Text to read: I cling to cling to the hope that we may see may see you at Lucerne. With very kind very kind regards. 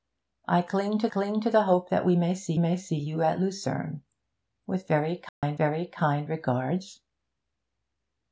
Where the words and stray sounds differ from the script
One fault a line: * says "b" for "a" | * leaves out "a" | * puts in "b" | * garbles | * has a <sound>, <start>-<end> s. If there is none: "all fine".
* has a dropout, 5.3-5.4 s